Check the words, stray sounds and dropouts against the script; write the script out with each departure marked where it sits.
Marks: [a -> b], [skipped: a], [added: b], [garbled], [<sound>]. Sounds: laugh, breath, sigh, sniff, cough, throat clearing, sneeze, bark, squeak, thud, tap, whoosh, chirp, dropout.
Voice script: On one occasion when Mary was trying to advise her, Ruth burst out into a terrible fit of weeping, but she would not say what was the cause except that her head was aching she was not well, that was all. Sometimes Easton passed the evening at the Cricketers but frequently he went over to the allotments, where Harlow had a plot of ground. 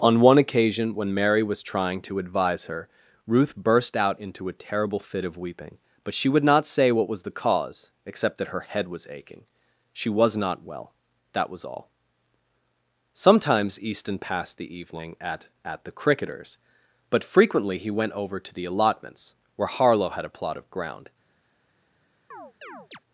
On one occasion when Mary was trying to advise her, Ruth burst out into a terrible fit of weeping, but she would not say what was the cause except that her head was aching she was not well, that was all. Sometimes Easton passed the evening at [added: at] the Cricketers but frequently he went over to the allotments, where Harlow had a plot of ground. [chirp]